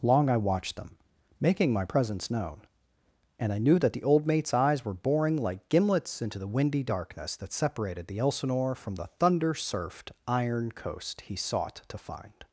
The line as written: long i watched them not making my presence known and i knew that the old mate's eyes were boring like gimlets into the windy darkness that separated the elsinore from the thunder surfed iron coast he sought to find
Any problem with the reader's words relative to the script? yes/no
yes